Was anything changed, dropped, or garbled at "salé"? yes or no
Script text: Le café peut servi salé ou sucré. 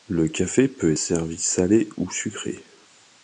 no